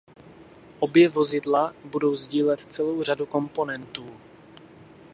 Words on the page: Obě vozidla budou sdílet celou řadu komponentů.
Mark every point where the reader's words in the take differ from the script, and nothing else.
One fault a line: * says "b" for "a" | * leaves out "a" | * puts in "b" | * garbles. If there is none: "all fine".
all fine